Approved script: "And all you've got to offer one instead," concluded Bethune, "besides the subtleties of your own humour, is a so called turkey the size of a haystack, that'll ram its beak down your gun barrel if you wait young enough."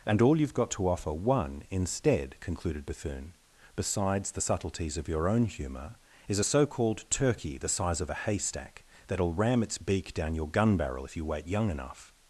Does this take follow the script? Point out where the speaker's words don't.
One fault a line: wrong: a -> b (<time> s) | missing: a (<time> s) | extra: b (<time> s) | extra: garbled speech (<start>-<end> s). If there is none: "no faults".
no faults